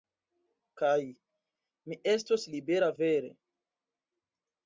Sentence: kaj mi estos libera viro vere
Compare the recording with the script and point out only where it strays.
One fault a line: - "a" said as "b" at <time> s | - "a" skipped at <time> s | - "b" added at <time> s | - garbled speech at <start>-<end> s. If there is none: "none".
- "viro" skipped at 2.9 s